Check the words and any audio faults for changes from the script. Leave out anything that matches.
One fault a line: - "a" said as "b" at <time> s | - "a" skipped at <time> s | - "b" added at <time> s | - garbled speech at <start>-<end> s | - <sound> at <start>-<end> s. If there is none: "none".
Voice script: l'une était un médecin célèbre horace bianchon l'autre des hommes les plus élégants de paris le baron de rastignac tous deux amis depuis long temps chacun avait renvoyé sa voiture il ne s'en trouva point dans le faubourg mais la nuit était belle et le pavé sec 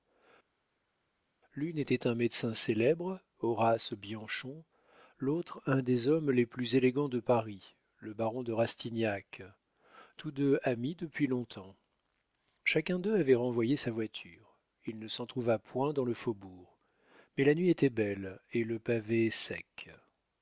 - "un" added at 5.7 s
- "d'eux" added at 13.0 s